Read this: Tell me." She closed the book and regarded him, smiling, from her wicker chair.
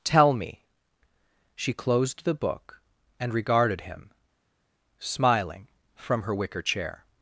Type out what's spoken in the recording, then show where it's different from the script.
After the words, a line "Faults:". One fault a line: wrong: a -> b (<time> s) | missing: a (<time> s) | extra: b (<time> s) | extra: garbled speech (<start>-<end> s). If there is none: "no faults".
Tell me." She closed the book and regarded him, smiling, from her wicker chair.
Faults:
no faults